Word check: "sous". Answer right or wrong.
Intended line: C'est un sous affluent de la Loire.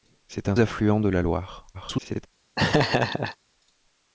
wrong